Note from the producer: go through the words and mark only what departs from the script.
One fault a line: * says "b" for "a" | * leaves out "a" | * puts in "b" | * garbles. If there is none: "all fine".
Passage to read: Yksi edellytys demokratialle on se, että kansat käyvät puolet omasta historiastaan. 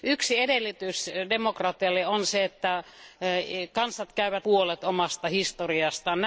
all fine